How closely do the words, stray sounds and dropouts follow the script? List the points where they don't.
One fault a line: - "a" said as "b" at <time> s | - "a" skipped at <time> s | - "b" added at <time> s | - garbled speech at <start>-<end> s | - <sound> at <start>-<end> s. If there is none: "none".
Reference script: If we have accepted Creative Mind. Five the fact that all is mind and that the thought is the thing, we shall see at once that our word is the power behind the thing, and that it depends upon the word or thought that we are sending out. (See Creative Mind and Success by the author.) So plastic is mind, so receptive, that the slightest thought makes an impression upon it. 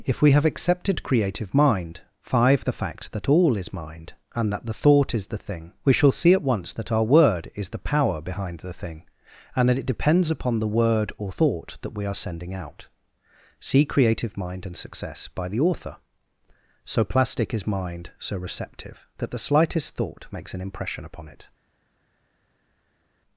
none